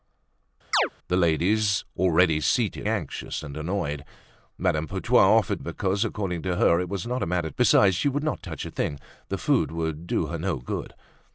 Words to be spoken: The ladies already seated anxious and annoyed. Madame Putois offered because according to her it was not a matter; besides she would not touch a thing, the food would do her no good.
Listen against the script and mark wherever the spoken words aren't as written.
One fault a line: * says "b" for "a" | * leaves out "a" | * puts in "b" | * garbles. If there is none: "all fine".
all fine